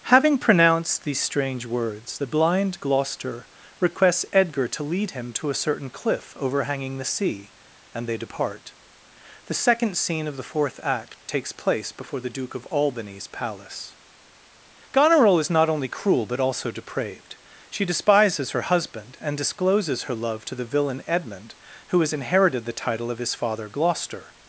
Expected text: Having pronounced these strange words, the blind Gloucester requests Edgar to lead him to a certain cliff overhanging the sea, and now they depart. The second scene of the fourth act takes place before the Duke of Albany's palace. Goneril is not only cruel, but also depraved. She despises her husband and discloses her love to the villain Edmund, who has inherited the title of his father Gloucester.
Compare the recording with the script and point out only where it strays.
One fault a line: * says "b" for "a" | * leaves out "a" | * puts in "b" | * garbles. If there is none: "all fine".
* leaves out "now"